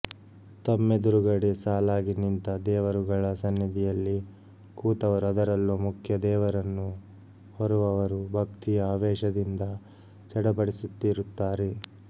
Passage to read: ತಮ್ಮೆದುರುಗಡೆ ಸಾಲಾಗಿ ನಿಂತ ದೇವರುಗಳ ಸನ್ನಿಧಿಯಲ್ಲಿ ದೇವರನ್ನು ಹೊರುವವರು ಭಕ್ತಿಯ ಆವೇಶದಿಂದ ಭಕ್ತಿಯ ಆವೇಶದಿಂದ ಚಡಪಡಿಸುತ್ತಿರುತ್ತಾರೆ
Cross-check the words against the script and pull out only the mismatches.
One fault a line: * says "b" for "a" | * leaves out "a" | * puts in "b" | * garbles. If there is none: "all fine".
* puts in "ಕೂತವರು ಅದರಲ್ಲೂ ಮುಖ್ಯ"
* leaves out "ಭಕ್ತಿಯ ಆವೇಶದಿಂದ"